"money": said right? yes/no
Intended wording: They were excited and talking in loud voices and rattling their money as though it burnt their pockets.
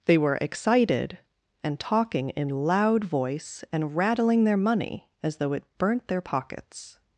yes